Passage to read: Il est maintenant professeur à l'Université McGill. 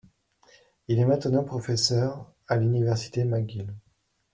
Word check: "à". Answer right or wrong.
right